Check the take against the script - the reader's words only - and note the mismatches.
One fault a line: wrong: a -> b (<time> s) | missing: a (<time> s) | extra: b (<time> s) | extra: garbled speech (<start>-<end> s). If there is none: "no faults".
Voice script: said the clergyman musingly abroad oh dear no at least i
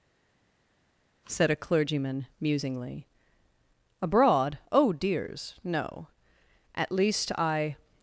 wrong: the -> a (1.5 s)
wrong: dear -> dears (4.9 s)